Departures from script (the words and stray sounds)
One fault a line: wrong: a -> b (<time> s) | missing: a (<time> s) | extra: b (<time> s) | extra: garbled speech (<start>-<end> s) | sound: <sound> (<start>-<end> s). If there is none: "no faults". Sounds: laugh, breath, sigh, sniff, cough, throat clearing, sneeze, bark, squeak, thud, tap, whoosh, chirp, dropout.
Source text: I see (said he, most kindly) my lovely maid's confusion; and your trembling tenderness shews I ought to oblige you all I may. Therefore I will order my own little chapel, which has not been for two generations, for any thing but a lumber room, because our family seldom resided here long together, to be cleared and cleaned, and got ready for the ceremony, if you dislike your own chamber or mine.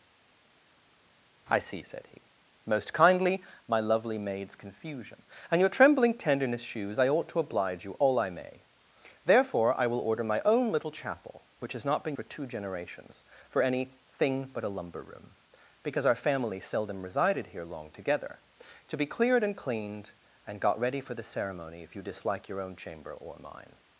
no faults